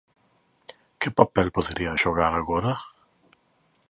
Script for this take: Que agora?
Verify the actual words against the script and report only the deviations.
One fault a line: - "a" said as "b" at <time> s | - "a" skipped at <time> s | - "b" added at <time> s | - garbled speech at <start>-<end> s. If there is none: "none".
- "papel poderían xogar" added at 1.2 s